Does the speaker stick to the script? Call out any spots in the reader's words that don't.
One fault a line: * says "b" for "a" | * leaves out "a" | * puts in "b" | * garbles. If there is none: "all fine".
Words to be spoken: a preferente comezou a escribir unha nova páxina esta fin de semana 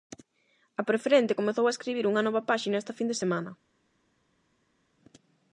all fine